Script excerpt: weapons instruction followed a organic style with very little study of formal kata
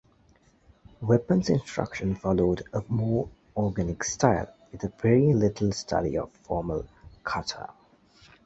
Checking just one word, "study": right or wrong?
right